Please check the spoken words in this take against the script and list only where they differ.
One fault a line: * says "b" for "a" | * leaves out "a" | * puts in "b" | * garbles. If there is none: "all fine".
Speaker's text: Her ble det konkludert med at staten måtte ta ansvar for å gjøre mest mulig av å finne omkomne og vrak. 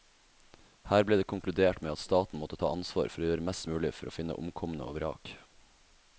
* says "for" for "av"